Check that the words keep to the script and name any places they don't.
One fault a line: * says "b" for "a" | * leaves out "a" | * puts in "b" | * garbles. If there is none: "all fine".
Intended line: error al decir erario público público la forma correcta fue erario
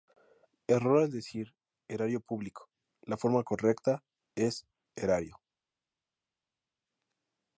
* leaves out "público"
* says "es" for "fue"